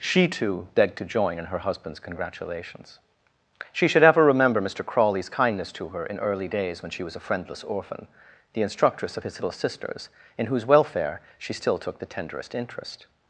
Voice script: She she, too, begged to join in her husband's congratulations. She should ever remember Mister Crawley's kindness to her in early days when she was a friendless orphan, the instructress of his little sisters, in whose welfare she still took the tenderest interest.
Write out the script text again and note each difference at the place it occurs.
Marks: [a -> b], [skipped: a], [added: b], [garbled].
She [skipped: she,] too, begged to join in her husband's congratulations. She should ever remember Mister Crawley's kindness to her in early days when she was a friendless orphan, the instructress of his little sisters, in whose welfare she still took the tenderest interest.